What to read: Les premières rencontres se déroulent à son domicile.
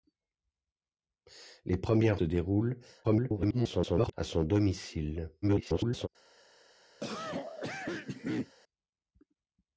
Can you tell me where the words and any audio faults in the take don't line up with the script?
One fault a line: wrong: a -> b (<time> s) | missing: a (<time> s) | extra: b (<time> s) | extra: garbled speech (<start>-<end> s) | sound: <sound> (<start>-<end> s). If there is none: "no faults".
missing: rencontres (2.2 s)
extra: garbled speech (3.0-4.1 s)
extra: garbled speech (5.4-6.1 s)
sound: cough (7.0-8.5 s)